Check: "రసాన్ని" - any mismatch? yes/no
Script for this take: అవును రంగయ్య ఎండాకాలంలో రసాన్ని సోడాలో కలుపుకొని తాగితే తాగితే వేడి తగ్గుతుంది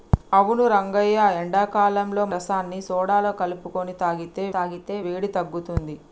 no